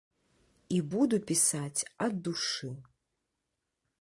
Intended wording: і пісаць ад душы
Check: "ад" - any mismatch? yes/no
no